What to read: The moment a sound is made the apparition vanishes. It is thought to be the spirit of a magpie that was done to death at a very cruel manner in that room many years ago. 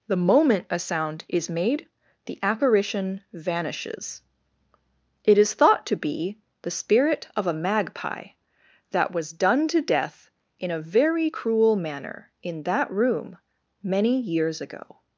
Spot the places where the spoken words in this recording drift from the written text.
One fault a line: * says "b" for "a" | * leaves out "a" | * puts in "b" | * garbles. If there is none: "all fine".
* says "in" for "at"